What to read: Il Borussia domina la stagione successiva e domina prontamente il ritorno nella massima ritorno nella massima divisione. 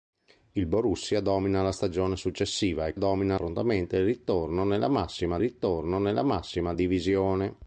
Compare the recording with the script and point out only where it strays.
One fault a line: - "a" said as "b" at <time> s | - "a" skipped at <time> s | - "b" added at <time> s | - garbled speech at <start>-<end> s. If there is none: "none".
none